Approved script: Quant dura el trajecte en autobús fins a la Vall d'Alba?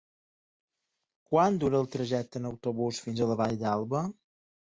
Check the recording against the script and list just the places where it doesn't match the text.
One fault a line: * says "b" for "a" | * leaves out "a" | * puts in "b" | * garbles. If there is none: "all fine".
all fine